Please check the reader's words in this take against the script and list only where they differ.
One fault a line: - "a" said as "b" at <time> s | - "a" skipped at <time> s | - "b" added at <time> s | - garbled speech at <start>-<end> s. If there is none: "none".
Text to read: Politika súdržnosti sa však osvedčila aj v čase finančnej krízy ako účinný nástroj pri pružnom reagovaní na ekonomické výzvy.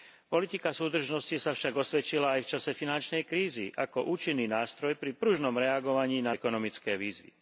none